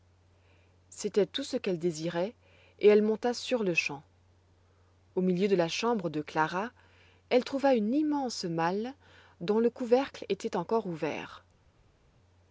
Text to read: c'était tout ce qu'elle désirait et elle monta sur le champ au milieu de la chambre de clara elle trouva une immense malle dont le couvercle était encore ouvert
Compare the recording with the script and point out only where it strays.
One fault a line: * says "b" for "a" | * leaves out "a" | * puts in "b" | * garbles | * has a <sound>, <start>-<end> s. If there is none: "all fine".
all fine